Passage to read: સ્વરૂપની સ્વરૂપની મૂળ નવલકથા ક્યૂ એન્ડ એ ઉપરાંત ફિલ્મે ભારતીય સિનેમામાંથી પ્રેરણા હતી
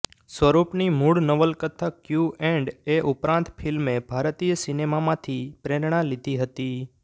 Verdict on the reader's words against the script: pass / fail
fail